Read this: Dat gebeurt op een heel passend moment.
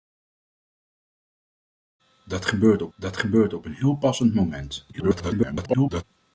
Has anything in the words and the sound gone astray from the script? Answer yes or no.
yes